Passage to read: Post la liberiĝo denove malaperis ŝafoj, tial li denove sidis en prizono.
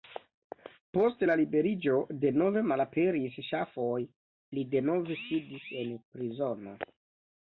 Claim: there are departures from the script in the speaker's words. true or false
true